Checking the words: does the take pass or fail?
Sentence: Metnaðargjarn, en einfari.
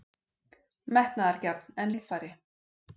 pass